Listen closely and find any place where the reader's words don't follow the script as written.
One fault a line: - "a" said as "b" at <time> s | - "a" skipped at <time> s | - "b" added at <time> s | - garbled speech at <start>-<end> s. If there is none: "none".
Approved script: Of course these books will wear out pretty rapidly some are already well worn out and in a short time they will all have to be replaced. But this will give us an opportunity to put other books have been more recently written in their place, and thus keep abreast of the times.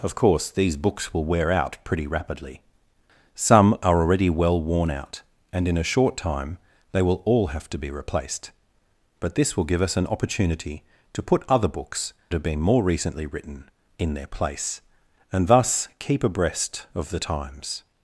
none